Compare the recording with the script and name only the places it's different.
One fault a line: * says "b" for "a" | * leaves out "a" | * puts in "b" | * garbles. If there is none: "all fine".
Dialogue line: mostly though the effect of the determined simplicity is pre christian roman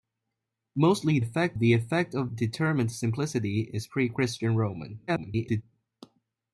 * says "effect" for "though"
* leaves out "the"
* garbles